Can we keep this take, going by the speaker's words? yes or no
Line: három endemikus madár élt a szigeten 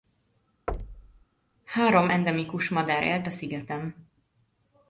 yes